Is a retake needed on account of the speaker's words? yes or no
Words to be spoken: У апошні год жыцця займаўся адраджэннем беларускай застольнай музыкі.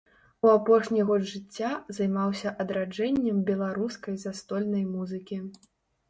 no